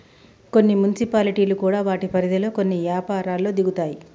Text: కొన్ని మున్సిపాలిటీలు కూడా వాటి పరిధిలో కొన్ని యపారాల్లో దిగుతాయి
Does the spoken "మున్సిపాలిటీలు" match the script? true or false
true